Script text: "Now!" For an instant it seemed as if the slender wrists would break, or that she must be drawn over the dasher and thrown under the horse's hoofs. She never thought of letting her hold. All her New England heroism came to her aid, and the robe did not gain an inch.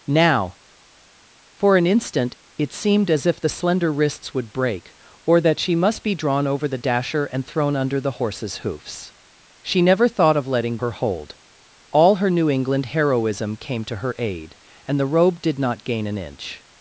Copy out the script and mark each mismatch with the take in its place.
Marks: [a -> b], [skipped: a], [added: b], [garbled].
"Now!" For an instant it seemed as if the slender wrists would break, or that she must be drawn over the dasher and thrown under the horse's hoofs. She never thought of letting her hold. All her New England heroism came to her aid, and the robe did not gain an inch.